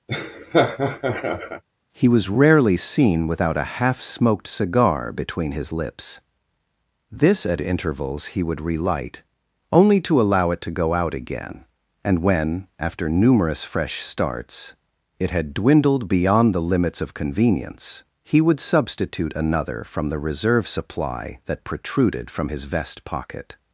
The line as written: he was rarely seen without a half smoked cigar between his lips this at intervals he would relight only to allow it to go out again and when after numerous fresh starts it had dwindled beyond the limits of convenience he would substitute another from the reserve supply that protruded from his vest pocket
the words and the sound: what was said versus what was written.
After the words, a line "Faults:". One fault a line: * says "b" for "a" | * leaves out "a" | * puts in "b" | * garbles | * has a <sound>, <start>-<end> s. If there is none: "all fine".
he was rarely seen without a half smoked cigar between his lips this at intervals he would relight only to allow it to go out again and when after numerous fresh starts it had dwindled beyond the limits of convenience he would substitute another from the reserve supply that protruded from his vest pocket
Faults:
* has a laugh, 0.1-1.6 s